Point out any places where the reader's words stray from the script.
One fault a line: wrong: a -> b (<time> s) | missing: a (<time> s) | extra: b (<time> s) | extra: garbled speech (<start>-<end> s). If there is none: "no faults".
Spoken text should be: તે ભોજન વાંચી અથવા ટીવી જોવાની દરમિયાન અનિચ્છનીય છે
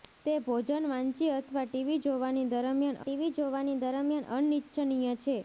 extra: ટીવી જોવાની દરમિયાન (3.0 s)